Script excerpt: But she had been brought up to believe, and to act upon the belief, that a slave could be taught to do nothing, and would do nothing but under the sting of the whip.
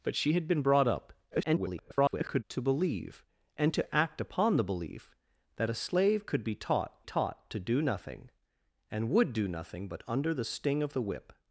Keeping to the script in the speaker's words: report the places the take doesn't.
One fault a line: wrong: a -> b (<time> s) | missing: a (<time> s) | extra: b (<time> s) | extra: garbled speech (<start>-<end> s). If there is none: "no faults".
extra: garbled speech (1.3-2.4 s)
extra: taught (7.0 s)